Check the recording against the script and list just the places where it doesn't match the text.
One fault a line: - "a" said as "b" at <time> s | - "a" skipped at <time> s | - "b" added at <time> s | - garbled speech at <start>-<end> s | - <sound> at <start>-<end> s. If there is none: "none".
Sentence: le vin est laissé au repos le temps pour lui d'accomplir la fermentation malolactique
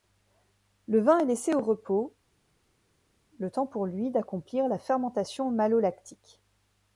none